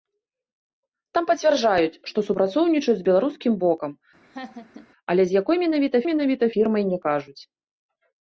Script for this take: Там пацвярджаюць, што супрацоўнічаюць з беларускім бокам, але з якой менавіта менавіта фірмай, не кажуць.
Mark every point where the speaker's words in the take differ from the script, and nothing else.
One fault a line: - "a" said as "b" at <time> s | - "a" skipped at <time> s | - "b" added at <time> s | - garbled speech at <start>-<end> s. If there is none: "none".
none